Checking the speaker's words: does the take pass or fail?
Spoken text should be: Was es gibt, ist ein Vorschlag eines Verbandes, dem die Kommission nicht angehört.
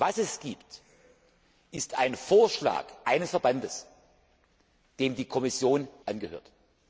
fail